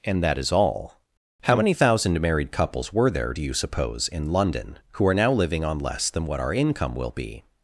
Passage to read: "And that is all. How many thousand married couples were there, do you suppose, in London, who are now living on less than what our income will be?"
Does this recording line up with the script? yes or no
yes